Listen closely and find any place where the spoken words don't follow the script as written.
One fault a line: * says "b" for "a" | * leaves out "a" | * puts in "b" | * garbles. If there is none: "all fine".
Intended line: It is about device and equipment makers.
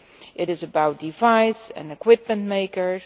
all fine